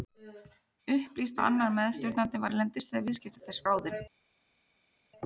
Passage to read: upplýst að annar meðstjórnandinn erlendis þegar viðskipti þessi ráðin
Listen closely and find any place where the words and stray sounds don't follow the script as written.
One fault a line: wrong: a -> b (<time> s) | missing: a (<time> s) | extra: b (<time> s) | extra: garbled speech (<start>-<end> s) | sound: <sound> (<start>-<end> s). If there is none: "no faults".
no faults